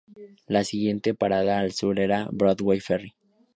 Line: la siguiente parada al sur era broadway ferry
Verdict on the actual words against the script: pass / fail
pass